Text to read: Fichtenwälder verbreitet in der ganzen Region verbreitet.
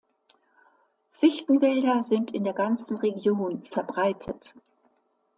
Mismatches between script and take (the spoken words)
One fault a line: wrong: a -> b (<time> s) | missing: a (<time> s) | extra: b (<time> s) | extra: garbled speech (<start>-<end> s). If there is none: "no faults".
wrong: verbreitet -> sind (2.0 s)